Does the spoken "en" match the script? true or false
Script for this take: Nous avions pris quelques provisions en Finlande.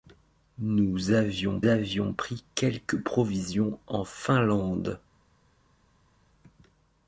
true